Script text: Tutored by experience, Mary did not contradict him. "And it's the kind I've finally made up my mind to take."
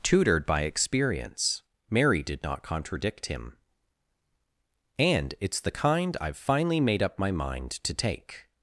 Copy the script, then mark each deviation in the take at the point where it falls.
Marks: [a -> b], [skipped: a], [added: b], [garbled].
Tutored by experience, Mary did not contradict him. "And it's the kind I've finally made up my mind to take."